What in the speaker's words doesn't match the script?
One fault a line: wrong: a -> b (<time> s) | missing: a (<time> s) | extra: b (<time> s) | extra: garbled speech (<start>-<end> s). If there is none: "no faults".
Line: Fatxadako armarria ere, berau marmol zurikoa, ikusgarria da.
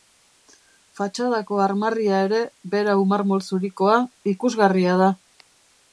no faults